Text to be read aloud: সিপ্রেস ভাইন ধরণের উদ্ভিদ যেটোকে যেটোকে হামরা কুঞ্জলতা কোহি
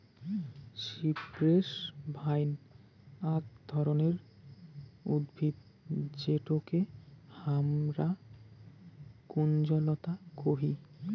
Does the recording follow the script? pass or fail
fail